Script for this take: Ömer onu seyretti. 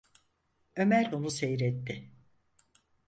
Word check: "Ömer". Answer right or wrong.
right